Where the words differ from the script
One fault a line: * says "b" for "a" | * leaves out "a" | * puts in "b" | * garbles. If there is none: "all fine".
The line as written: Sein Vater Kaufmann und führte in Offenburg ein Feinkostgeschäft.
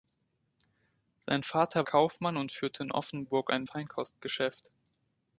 all fine